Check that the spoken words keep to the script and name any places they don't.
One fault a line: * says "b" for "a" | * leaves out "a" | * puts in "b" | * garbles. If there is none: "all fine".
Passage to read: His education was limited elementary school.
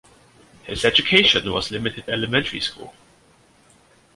all fine